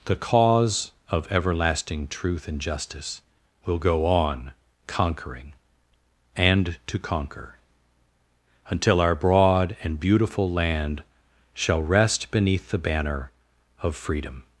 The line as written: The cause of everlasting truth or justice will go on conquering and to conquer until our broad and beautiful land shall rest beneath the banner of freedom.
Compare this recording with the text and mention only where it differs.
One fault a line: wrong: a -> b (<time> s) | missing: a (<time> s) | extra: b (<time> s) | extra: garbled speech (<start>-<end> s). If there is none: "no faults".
wrong: or -> and (2.5 s)